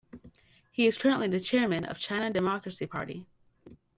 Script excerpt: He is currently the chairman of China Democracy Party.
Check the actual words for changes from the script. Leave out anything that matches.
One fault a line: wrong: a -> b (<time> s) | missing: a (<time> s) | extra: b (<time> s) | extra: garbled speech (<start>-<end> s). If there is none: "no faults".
no faults